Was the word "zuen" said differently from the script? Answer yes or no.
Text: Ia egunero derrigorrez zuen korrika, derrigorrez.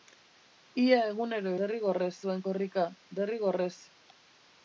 no